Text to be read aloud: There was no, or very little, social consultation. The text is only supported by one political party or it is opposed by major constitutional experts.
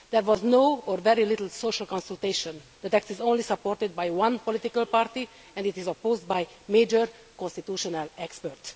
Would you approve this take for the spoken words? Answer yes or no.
no